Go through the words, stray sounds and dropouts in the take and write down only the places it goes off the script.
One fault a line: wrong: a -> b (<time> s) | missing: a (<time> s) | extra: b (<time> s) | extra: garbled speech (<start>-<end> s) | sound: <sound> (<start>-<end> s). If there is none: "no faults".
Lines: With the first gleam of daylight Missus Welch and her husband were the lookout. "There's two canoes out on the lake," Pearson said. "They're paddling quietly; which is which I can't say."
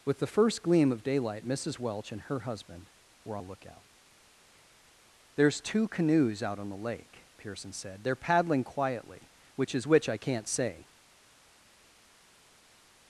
no faults